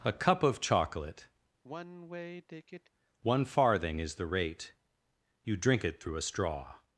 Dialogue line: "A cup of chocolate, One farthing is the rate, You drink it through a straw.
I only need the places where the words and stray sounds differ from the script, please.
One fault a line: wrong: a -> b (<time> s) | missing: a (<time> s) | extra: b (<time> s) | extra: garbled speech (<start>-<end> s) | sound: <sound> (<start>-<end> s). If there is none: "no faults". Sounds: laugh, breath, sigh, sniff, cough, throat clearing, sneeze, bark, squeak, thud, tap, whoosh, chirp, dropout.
sound: sigh (1.6-2.9 s)